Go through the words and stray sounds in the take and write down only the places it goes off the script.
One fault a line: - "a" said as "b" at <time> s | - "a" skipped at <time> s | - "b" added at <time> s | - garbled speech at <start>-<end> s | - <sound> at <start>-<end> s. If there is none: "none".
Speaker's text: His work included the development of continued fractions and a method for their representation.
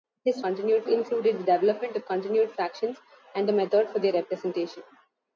- "work" said as "continued" at 0.4 s